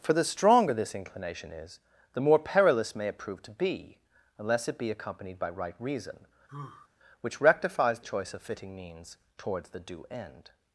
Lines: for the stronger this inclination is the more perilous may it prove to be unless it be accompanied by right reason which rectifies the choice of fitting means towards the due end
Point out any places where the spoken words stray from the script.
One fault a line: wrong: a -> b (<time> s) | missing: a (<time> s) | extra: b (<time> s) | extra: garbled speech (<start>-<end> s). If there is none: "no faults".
missing: the (8.0 s)